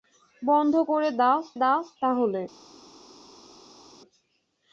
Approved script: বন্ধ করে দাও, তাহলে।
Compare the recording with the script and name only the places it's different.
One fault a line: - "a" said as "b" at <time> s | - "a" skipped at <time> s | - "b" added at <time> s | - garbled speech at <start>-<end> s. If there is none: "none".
- "দাও" added at 1.5 s